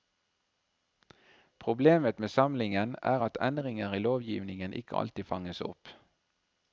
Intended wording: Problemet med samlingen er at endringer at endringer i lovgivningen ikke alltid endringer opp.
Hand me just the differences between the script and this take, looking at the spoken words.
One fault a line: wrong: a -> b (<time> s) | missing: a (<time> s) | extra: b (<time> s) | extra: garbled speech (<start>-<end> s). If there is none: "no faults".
missing: at endringer (3.9 s)
wrong: endringer -> fanges (5.2 s)